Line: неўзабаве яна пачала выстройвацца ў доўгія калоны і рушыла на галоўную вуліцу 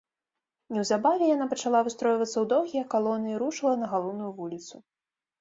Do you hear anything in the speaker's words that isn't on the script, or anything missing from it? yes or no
no